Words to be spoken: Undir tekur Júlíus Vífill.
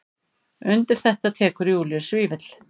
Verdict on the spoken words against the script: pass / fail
fail